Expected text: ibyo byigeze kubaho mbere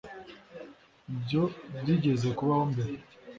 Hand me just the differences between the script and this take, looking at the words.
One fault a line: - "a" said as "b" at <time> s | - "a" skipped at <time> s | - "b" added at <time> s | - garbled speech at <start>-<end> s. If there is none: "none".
none